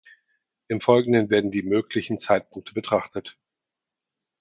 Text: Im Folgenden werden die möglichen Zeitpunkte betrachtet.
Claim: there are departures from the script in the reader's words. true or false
false